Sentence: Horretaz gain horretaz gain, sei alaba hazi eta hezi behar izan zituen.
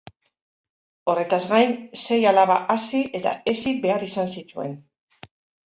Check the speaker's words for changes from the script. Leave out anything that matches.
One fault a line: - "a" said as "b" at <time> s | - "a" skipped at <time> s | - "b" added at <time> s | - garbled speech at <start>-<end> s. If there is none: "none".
- "horretaz gain" skipped at 1.8 s